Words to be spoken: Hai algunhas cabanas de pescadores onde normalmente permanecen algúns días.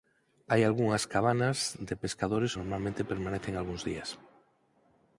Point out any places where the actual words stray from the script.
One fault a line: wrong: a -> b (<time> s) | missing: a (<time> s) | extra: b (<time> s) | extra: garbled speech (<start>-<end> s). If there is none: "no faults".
missing: onde (2.5 s)